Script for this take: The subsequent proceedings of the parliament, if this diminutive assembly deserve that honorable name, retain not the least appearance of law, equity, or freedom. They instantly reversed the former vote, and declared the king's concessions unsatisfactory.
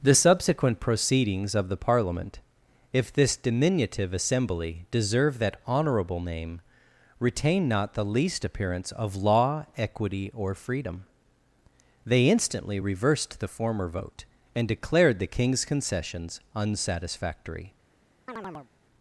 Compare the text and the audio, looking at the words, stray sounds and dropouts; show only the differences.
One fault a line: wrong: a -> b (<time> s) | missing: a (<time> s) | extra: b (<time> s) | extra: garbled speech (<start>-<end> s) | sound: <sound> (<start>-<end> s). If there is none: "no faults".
sound: chirp (18.3-18.7 s)